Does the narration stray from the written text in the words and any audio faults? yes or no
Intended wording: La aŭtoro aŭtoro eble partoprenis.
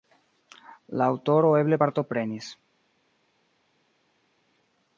yes